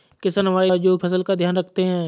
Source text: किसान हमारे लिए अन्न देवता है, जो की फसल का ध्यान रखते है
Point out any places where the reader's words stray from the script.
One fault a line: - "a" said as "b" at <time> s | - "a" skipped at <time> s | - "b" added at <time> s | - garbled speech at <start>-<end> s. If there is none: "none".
- "लिए अन्न देवता" skipped at 0.7 s
- "की" skipped at 1.0 s